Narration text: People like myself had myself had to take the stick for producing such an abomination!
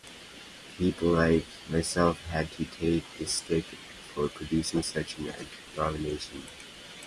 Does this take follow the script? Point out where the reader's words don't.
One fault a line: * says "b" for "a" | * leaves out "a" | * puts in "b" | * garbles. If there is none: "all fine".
* leaves out "myself had"